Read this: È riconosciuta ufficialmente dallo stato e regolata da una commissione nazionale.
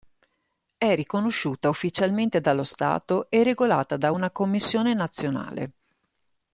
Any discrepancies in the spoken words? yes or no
no